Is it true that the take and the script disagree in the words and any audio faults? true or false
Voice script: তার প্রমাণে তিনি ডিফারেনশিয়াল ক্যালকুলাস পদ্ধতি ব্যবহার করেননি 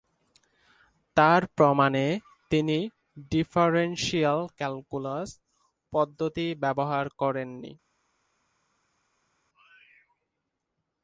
false